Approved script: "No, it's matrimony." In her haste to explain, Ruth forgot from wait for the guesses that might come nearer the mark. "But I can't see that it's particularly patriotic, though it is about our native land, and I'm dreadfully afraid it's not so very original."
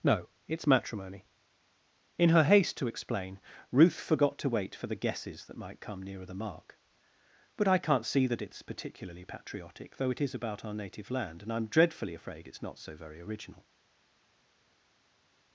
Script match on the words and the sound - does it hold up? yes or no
no